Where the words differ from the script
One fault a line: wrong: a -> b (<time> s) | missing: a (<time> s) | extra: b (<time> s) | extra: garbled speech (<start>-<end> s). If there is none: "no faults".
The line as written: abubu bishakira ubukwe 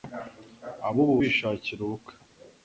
no faults